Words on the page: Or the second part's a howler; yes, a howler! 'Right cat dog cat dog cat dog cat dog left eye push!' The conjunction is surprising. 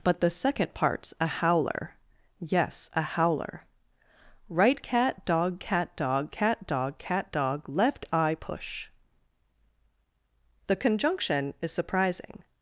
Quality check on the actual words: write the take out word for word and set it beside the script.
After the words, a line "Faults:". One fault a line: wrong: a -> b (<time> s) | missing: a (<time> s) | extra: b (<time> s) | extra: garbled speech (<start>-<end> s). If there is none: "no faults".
But the second part's a howler; yes, a howler! 'Right cat dog cat dog cat dog cat dog left eye push!' The conjunction is surprising.
Faults:
wrong: Or -> But (0.0 s)